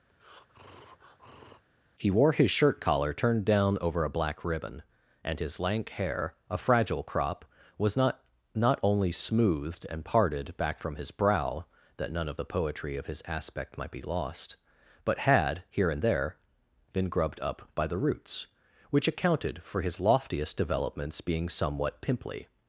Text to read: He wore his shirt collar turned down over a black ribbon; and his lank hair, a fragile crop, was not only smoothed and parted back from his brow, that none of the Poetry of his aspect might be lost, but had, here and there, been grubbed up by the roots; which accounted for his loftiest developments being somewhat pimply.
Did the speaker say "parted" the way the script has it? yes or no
yes